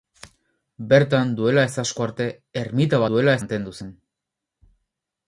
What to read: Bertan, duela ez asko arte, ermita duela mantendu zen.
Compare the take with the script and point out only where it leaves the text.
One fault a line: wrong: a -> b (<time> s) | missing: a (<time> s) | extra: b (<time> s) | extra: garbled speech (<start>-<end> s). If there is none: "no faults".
no faults